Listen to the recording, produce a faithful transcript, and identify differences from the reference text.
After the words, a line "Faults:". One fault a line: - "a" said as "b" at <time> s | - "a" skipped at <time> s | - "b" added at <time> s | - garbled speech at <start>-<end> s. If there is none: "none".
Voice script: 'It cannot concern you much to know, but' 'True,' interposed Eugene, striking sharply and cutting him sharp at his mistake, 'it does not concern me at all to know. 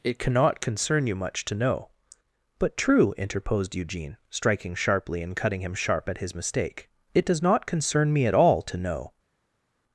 'It cannot concern you much to know, but' 'True,' interposed Eugene, striking sharply and cutting him sharp at his mistake, 'it does not concern me at all to know.
Faults:
none